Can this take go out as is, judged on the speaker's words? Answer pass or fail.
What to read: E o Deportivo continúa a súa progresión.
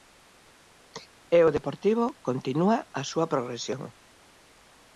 pass